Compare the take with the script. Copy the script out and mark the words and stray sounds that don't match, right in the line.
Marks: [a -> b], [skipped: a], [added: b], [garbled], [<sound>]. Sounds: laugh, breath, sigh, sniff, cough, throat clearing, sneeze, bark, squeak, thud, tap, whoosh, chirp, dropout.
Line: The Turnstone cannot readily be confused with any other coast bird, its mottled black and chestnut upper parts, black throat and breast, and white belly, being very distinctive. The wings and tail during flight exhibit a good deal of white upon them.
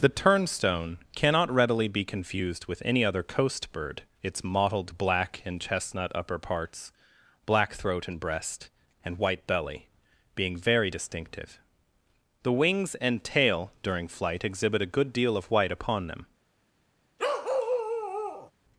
The Turnstone cannot readily be confused with any other coast bird, its mottled black and chestnut upper parts, black throat and breast, and white belly, being very distinctive. The wings and tail during flight exhibit a good deal of white upon them. [bark]